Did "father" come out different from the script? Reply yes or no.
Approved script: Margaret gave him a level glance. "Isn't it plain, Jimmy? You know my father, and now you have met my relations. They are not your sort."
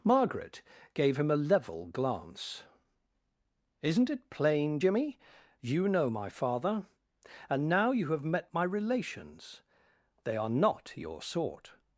no